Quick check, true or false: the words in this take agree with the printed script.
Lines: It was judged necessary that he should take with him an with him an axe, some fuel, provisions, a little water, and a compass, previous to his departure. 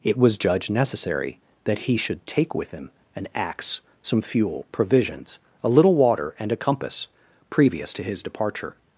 false